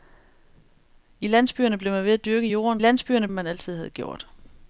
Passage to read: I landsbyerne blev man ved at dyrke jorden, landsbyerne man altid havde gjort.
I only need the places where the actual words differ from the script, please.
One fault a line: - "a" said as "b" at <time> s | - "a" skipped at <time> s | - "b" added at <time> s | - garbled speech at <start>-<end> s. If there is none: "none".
none